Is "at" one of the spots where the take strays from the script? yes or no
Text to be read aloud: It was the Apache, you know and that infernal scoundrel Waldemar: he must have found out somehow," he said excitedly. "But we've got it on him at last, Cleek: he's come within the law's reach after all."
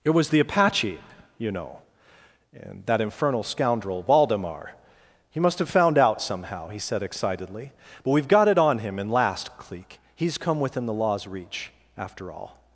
yes